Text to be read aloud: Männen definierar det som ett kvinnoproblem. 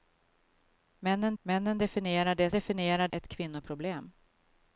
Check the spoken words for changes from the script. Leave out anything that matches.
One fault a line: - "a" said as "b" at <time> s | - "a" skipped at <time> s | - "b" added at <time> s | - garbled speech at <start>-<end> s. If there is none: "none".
- "männen" added at 1.4 s
- "som" said as "definierar" at 2.5 s